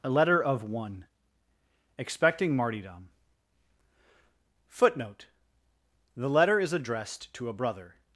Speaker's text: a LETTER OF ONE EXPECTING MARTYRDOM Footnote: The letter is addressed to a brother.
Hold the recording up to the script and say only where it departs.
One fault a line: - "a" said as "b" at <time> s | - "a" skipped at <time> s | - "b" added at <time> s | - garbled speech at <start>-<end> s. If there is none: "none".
none